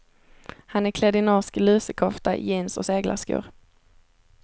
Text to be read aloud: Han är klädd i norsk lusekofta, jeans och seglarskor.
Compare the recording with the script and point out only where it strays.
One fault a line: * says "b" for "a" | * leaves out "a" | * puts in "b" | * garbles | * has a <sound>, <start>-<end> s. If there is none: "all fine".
all fine